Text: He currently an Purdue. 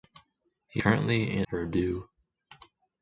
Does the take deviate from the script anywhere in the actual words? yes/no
no